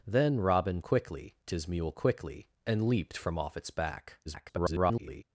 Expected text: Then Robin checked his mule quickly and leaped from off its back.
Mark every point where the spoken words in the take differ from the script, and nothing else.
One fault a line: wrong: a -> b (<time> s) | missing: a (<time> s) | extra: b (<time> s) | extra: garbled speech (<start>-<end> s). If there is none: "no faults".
wrong: checked -> quickly (0.8 s)
extra: garbled speech (4.3-5.2 s)